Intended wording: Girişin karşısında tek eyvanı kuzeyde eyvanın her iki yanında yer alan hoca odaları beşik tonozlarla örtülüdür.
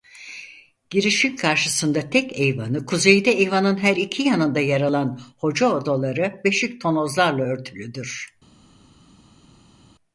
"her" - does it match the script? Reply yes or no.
yes